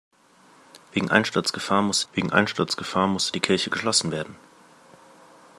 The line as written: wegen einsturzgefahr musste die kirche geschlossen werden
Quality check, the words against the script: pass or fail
fail